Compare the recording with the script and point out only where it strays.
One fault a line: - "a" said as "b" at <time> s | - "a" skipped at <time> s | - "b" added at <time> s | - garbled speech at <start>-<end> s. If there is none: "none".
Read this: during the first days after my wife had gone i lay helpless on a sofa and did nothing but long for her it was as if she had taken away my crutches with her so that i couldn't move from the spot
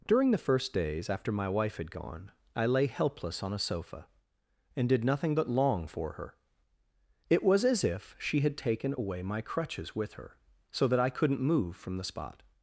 none